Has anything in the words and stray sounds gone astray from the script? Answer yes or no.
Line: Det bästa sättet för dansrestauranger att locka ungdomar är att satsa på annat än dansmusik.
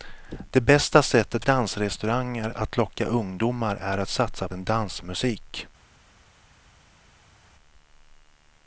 yes